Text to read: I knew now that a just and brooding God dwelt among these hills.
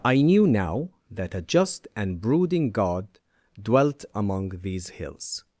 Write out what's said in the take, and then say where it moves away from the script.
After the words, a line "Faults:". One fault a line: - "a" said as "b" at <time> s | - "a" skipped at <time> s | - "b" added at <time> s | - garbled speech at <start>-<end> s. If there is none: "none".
I knew now that a just and brooding God dwelt among these hills.
Faults:
none